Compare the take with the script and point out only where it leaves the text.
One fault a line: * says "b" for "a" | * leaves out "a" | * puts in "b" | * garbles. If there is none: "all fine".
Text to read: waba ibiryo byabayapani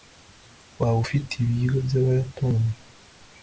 * puts in "ufite"